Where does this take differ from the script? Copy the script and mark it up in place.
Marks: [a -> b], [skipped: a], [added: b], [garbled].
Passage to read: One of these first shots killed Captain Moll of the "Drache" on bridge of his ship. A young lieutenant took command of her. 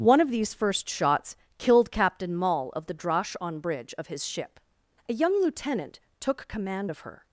One of these first shots killed Captain Moll of the "Drache" on bridge of his ship. A young lieutenant took command of her.